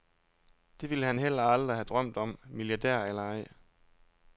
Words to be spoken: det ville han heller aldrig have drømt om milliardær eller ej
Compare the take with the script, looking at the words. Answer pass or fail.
pass